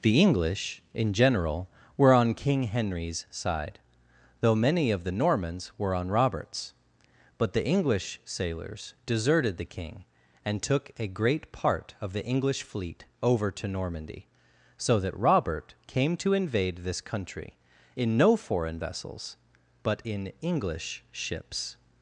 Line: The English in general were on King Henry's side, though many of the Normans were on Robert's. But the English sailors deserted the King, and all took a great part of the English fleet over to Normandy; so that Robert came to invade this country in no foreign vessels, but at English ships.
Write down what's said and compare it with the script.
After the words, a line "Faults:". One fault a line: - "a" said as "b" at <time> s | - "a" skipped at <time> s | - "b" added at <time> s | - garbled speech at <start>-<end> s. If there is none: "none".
The English in general were on King Henry's side, though many of the Normans were on Robert's. But the English sailors deserted the King, and took a great part of the English fleet over to Normandy; so that Robert came to invade this country in no foreign vessels, but in English ships.
Faults:
- "all" skipped at 10.6 s
- "at" said as "in" at 20.1 s